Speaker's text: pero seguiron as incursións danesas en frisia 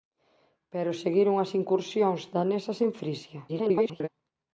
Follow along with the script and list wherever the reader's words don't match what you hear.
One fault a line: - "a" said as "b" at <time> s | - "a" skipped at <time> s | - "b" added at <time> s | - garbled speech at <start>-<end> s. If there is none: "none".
- garbled speech at 3.5-4.1 s